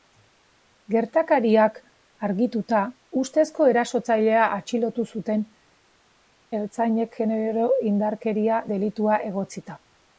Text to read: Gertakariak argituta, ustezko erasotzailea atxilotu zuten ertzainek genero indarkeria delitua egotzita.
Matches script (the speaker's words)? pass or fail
pass